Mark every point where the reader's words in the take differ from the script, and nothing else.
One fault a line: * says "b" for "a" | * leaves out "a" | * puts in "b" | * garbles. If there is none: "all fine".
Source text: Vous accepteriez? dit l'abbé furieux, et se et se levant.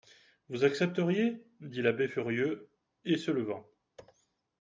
* leaves out "et se"